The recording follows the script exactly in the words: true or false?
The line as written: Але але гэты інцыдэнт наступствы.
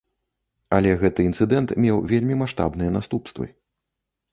false